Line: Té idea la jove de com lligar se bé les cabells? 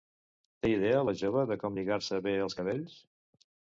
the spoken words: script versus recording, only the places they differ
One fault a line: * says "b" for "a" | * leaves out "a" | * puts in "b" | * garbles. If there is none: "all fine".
* says "els" for "les"